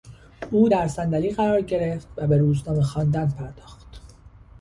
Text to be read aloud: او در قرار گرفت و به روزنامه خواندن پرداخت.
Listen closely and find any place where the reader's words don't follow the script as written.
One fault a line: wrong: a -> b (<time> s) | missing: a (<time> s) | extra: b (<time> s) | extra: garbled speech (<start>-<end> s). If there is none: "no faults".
extra: صندلی (0.9 s)